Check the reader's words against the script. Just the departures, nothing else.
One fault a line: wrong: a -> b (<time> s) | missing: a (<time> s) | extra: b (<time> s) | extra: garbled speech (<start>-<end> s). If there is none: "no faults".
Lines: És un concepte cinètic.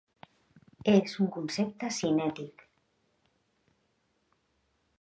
no faults